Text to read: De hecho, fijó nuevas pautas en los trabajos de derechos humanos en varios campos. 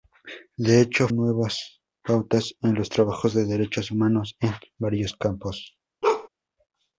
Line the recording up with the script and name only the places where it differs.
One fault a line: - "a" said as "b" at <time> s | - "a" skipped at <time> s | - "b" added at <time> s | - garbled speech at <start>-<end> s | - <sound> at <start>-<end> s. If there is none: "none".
- "fijó" skipped at 1.1 s
- bark at 6.0-6.3 s